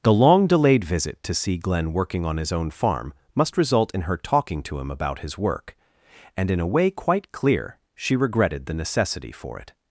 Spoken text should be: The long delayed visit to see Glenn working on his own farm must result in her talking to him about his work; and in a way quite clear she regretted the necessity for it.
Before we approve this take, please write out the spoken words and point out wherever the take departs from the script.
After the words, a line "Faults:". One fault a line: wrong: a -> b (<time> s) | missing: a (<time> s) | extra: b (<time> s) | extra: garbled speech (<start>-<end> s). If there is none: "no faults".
The long delayed visit to see Glenn working on his own farm must result in her talking to him about his work; and in a way quite clear she regretted the necessity for it.
Faults:
no faults